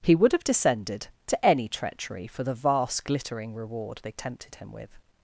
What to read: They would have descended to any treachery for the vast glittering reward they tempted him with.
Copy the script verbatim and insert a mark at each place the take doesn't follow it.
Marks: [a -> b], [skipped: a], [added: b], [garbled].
[They -> He] would have descended to any treachery for the vast glittering reward they tempted him with.